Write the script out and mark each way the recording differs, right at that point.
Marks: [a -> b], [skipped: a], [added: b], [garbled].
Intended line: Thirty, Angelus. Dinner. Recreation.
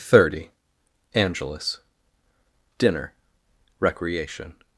Thirty, Angelus. Dinner. Recreation.